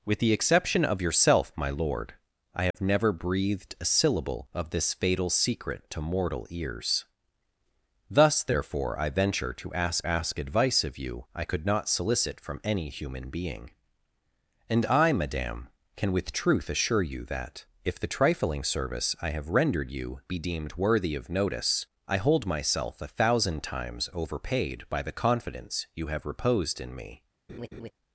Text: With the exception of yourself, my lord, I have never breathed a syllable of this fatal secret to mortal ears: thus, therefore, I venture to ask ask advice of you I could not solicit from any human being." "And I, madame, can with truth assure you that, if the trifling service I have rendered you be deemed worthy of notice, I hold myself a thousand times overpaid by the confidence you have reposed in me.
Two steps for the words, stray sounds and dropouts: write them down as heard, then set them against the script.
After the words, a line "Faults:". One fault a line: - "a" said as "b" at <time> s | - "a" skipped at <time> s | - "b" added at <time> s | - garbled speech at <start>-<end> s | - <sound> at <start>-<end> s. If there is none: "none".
With the exception of yourself, my lord, I have never breathed a syllable of this fatal secret to mortal ears: thus, therefore, I venture to ask ask advice of you I could not solicit from any human being." "And I, madame, can with truth assure you that, if the trifling service I have rendered you be deemed worthy of notice, I hold myself a thousand times overpaid by the confidence you have reposed in me.
Faults:
- dropout at 2.7-2.7 s
- laugh at 27.5-27.9 s